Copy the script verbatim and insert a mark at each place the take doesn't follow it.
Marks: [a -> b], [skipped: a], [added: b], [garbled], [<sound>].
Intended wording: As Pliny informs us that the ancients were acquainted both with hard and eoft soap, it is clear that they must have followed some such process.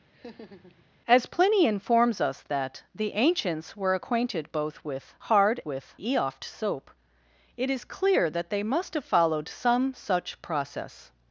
[laugh] As Pliny informs us that the ancients were acquainted both with hard [and -> with] eoft soap, it is clear that they must have followed some such process.